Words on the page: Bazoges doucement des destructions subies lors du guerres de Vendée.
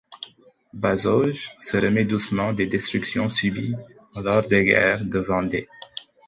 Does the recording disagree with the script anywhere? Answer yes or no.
yes